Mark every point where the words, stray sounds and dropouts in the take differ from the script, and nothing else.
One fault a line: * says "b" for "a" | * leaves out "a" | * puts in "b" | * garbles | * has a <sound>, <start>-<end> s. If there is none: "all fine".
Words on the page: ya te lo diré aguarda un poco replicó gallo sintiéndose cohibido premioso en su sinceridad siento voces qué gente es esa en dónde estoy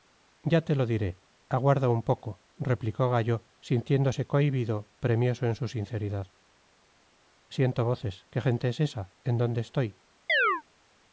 * has a chirp, 10.3-10.6 s